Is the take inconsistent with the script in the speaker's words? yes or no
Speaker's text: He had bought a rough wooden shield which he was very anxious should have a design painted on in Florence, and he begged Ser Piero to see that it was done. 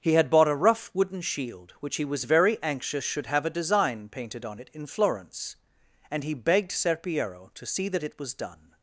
yes